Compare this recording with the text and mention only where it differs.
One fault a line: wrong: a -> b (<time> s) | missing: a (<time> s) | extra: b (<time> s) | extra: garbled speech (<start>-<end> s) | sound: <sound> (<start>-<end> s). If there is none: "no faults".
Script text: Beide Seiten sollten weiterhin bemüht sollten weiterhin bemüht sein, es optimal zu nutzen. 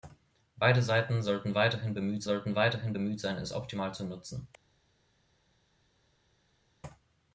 no faults